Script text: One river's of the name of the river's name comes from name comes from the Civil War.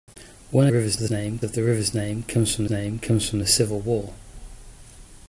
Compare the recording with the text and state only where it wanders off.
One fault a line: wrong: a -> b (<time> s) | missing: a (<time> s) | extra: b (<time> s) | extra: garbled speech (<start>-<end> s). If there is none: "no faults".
no faults